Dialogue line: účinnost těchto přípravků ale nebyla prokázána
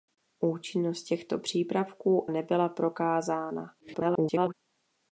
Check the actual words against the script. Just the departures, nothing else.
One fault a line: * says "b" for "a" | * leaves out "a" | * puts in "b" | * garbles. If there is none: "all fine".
* leaves out "ale"
* garbles